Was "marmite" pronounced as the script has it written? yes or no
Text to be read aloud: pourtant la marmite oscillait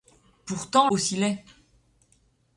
no